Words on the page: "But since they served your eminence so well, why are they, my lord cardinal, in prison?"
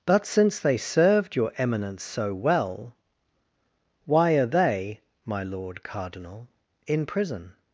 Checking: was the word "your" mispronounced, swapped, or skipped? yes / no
no